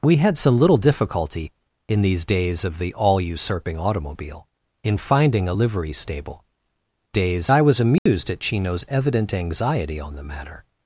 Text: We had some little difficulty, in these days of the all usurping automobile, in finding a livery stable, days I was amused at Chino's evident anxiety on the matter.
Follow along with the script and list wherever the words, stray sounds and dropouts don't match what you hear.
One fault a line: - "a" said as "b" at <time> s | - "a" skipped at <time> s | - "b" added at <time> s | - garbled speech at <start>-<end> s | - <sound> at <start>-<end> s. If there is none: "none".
- dropout at 8.0-8.1 s